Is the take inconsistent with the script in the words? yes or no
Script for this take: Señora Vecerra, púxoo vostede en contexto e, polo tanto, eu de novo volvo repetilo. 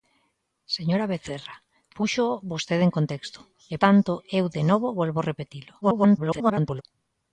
yes